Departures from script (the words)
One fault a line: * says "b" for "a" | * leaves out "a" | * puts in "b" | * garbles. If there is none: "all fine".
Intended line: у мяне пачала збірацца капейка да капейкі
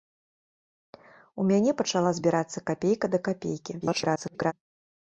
* garbles